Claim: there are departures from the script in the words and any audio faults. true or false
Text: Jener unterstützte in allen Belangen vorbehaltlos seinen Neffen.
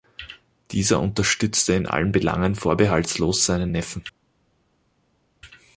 true